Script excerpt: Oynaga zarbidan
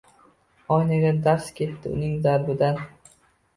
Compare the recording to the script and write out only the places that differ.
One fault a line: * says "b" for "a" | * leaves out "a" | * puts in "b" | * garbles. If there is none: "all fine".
* puts in "darz ketdi uning"